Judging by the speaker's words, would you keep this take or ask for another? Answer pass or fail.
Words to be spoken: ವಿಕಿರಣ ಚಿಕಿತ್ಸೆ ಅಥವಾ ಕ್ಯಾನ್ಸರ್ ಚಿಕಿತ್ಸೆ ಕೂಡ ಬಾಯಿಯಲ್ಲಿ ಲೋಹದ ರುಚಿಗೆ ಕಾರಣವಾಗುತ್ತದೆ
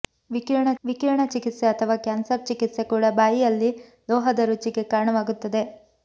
fail